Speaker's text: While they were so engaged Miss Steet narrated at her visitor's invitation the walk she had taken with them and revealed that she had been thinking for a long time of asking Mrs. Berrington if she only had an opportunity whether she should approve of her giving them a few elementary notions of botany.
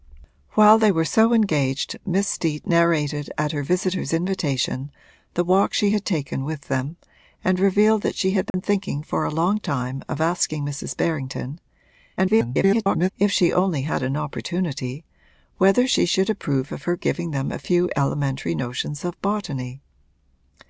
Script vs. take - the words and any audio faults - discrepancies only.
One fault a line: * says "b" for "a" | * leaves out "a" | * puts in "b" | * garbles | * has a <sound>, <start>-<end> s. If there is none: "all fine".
* has a dropout, 8.5-8.5 s
* garbles